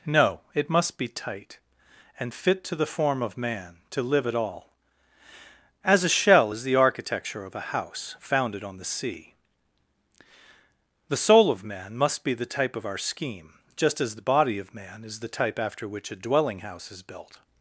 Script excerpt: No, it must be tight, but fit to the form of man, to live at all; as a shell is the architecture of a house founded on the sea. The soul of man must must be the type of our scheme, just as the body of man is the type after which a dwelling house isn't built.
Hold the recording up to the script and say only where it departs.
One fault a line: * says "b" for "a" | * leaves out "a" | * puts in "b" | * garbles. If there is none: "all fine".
* says "and" for "but"
* leaves out "must"
* says "is" for "isn't"